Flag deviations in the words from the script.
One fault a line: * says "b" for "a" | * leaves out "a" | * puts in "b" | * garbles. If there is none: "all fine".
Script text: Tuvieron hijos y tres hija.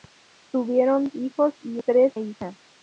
all fine